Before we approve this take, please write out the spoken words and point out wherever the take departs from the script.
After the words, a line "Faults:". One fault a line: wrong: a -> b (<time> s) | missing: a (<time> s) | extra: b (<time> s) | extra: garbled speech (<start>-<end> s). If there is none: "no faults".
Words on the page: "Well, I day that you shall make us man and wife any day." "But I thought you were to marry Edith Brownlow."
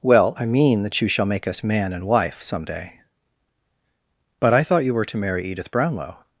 "Well, I mean that you shall make us man and wife some day." "But I thought you were to marry Edith Brownlow."
Faults:
wrong: day -> mean (0.5 s)
wrong: any -> some (2.4 s)